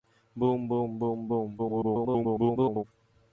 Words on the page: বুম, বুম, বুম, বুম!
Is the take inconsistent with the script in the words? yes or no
yes